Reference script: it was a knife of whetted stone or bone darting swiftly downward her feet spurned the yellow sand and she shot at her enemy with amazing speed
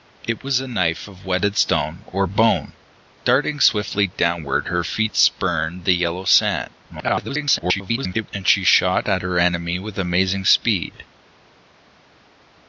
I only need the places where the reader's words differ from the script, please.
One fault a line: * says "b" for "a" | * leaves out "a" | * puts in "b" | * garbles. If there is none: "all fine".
* garbles